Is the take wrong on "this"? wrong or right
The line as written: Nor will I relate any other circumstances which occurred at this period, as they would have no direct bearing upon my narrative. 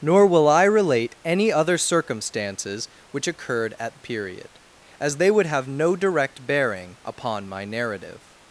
wrong